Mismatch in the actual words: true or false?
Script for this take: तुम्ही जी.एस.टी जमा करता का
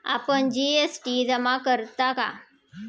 true